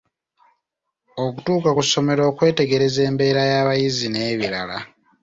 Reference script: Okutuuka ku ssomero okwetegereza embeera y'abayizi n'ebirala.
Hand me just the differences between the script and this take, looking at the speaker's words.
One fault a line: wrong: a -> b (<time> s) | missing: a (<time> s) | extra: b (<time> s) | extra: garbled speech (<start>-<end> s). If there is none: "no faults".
no faults